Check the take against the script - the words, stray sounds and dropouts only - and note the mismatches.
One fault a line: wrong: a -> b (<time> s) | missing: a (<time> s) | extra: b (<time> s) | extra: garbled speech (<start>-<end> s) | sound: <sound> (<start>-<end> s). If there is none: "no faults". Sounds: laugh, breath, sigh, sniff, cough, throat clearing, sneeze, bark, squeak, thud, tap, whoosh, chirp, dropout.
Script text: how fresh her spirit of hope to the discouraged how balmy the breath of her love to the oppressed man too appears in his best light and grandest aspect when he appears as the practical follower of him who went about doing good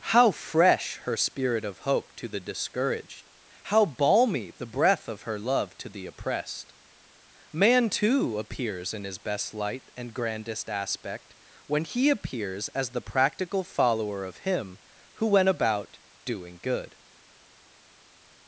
no faults